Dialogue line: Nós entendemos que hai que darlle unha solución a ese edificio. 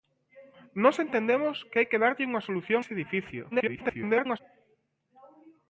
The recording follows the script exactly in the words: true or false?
false